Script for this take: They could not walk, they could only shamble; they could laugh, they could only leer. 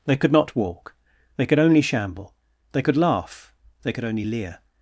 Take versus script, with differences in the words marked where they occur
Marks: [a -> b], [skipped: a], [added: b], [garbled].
They could not walk, they could only shamble; they could laugh, they could only leer.